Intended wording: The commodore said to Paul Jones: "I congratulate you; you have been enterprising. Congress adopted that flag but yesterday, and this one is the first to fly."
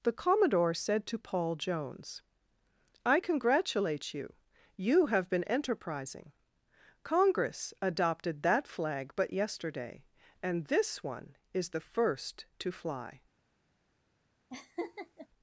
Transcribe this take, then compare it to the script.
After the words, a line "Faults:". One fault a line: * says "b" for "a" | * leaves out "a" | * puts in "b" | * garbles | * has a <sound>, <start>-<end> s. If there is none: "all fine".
The commodore said to Paul Jones: "I congratulate you; you have been enterprising. Congress adopted that flag but yesterday, and this one is the first to fly."
Faults:
* has a laugh, 14.5-15.3 s